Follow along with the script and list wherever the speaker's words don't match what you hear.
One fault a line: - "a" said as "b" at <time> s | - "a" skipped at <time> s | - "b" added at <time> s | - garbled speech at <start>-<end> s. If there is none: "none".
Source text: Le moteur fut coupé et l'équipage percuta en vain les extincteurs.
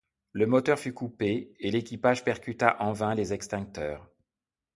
none